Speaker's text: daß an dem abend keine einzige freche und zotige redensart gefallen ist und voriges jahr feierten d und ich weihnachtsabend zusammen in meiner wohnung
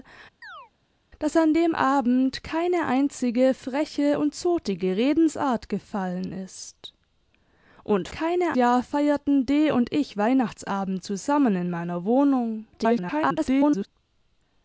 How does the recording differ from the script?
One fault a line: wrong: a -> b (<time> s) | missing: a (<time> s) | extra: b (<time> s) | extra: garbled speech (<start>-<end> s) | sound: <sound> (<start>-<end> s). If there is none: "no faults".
sound: chirp (0.4-0.7 s)
wrong: voriges -> keine (8.1 s)
extra: garbled speech (12.7-13.9 s)